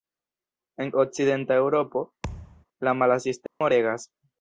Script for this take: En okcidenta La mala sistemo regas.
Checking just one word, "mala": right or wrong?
right